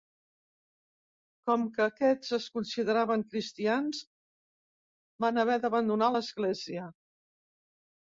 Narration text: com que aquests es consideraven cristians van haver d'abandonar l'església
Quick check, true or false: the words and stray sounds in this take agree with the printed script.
true